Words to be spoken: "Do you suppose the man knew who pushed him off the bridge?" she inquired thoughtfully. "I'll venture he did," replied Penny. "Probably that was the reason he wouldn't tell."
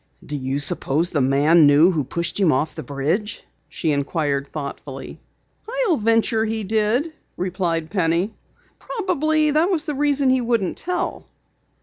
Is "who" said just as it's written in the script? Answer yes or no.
yes